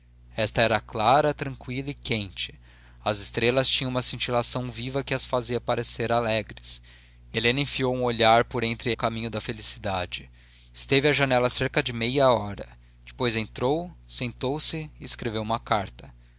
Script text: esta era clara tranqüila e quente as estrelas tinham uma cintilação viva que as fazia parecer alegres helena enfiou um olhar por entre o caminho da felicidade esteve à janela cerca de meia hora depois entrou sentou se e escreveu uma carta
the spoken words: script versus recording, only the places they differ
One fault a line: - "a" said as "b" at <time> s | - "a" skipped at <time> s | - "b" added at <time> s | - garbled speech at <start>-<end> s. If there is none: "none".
none